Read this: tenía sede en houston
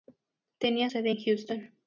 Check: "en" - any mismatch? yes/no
no